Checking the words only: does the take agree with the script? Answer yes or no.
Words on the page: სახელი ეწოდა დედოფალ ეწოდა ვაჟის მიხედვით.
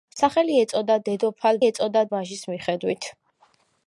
yes